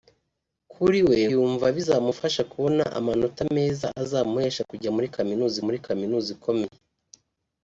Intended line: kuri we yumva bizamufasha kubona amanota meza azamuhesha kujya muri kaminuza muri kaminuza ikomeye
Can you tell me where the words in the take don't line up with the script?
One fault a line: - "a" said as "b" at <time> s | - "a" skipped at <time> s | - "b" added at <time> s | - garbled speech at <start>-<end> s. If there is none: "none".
none